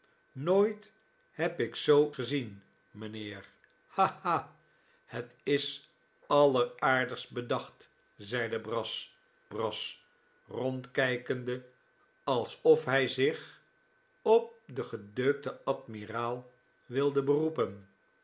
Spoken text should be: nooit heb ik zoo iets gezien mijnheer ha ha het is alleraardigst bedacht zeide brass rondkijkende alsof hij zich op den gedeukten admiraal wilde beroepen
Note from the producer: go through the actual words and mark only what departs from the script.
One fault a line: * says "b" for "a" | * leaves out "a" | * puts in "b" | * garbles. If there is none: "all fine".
* leaves out "iets"
* puts in "brass"